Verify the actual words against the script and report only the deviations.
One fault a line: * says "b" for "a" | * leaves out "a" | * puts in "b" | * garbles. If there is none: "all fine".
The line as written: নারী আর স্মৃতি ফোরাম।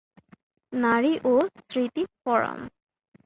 * says "ও" for "আর"